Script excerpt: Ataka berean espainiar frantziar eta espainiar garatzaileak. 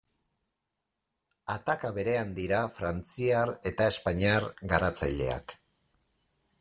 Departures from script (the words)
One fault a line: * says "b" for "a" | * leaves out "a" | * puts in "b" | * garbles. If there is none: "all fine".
* says "dira" for "espainiar"